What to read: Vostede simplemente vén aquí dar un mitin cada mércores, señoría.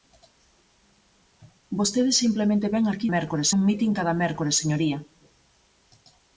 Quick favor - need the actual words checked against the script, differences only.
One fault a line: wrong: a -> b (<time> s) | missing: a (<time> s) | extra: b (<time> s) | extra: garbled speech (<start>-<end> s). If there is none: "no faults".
wrong: dar -> mércores (3.2 s)